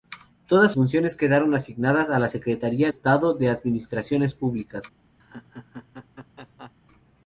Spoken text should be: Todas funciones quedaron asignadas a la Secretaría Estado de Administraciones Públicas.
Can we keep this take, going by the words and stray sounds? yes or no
no